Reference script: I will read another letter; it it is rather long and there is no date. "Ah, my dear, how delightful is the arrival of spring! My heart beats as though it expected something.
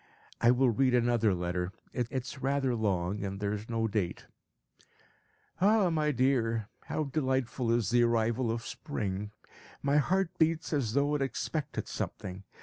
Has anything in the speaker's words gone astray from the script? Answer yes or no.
no